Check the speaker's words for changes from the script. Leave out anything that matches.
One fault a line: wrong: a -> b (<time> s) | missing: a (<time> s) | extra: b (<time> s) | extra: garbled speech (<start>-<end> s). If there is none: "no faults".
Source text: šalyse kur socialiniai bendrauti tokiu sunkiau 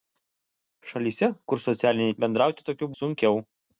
no faults